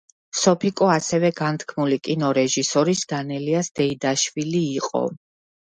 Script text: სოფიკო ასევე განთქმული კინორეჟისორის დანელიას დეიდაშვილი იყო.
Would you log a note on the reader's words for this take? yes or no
no